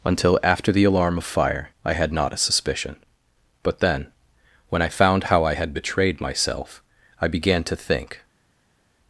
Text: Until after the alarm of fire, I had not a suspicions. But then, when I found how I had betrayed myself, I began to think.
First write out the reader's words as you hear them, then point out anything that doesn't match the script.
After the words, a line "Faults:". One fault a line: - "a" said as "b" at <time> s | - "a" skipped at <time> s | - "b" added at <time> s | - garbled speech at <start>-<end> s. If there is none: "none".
Until after the alarm of fire, I had not a suspicion. But then, when I found how I had betrayed myself, I began to think.
Faults:
- "suspicions" said as "suspicion" at 2.4 s